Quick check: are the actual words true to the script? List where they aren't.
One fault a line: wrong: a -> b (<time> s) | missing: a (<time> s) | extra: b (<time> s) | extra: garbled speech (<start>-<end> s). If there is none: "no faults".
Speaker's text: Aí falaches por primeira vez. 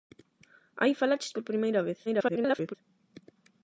extra: garbled speech (2.1-2.8 s)